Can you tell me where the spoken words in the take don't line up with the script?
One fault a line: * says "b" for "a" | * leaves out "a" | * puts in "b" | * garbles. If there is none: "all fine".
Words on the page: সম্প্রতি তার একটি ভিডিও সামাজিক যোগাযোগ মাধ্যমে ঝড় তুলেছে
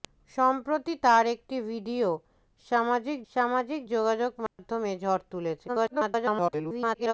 * puts in "সামাজিক"
* garbles